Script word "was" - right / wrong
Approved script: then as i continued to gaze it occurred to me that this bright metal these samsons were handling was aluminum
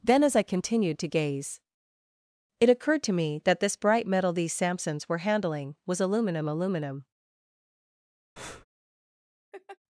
right